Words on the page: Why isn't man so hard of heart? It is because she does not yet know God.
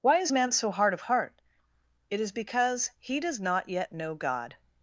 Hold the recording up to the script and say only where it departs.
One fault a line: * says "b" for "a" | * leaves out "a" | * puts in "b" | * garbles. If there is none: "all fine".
* says "is" for "isn't"
* says "he" for "she"